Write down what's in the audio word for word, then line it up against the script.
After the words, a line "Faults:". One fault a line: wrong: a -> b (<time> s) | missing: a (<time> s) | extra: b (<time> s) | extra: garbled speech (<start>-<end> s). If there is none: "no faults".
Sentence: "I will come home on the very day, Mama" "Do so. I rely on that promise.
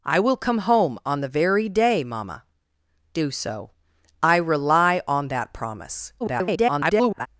"I will come home on the very day, Mama" "Do so. I rely on that promise. [garbled]
Faults:
extra: garbled speech (6.2-7.3 s)